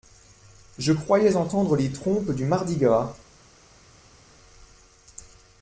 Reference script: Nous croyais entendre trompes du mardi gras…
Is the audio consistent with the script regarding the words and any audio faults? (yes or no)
no